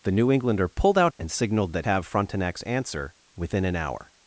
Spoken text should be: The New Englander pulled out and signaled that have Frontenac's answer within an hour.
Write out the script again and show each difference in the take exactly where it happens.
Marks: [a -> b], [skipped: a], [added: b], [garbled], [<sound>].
The New Englander pulled out and signaled that have Frontenac's answer within an hour.